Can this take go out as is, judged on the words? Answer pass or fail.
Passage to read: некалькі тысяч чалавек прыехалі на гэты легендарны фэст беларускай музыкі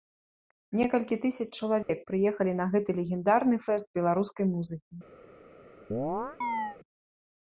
pass